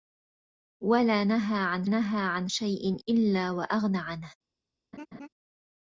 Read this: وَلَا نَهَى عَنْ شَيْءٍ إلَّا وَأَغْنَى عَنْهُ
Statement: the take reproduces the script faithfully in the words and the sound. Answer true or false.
false